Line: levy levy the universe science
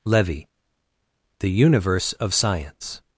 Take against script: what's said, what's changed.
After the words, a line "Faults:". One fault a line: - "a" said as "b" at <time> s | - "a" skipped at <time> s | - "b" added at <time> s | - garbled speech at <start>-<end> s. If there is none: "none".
levy the universe of science
Faults:
- "levy" skipped at 0.5 s
- "of" added at 2.1 s